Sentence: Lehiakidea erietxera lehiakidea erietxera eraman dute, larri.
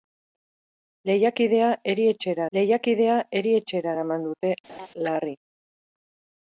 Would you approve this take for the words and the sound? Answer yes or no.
no